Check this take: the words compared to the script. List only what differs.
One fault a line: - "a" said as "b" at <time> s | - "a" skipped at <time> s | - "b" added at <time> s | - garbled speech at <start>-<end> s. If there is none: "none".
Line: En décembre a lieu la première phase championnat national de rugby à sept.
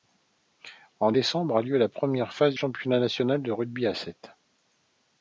none